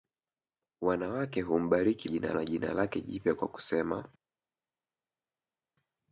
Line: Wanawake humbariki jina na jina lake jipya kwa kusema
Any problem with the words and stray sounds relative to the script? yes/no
no